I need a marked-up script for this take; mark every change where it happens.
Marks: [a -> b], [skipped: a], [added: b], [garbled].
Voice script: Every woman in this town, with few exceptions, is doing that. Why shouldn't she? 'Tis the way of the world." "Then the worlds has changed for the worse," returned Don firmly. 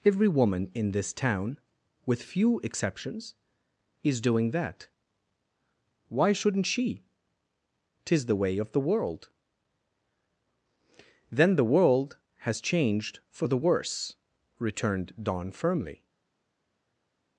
Every woman in this town, with few exceptions, is doing that. Why shouldn't she? 'Tis the way of the world." "Then the [worlds -> world] has changed for the worse," returned Don firmly.